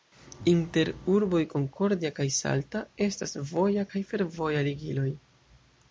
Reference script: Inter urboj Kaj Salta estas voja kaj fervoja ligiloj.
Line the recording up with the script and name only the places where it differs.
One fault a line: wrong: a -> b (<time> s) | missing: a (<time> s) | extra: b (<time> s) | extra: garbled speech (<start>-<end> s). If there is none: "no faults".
extra: Concordia (1.5 s)